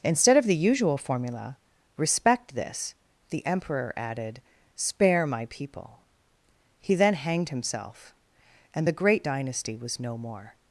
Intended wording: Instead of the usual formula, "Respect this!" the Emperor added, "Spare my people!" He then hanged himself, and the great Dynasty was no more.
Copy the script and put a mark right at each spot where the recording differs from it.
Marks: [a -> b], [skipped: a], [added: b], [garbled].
Instead of the usual formula, "Respect this!" the Emperor added, "Spare my people!" He then hanged himself, and the great Dynasty was no more.